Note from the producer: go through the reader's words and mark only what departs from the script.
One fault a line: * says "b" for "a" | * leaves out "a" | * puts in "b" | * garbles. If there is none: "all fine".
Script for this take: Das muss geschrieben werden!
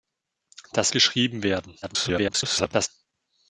* leaves out "muss"
* garbles